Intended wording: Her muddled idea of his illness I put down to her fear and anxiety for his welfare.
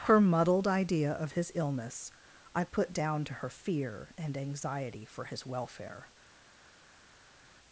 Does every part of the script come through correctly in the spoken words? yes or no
yes